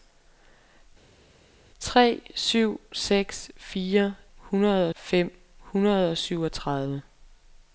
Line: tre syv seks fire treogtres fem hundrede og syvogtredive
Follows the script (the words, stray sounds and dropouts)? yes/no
no